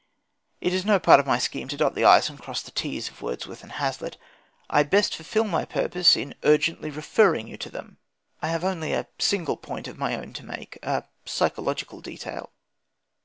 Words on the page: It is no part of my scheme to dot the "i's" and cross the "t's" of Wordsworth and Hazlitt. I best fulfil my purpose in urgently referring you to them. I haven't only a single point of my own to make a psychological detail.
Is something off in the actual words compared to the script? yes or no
yes